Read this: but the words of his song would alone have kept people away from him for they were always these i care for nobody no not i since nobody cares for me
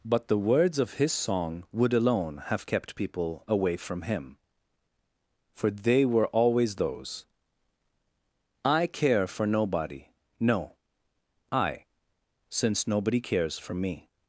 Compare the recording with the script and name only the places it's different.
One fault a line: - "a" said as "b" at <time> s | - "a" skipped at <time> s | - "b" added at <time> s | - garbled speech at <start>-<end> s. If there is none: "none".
- "these" said as "those" at 6.8 s
- "not" skipped at 10.8 s